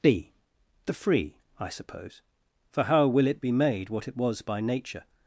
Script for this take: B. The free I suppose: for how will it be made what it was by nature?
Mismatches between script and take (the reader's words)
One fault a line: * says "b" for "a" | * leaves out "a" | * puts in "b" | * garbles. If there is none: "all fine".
all fine